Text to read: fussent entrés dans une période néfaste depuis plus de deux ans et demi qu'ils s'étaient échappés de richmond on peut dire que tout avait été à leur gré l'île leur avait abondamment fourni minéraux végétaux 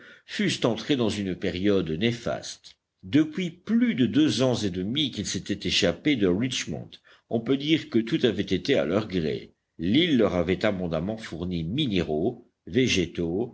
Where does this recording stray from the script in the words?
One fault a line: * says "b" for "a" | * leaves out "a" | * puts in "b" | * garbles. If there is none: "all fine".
all fine